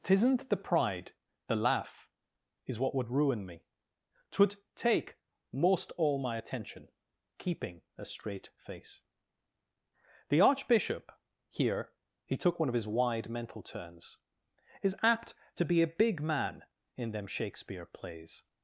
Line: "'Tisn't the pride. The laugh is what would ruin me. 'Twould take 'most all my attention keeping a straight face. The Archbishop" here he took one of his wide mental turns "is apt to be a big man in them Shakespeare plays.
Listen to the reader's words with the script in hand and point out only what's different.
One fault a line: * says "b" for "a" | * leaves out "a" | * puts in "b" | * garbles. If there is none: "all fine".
all fine